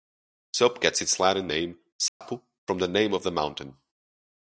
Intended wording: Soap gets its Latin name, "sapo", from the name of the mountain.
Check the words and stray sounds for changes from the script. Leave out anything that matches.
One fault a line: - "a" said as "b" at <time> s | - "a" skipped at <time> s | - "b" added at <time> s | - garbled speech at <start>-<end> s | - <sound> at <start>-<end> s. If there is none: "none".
- dropout at 2.1-2.2 s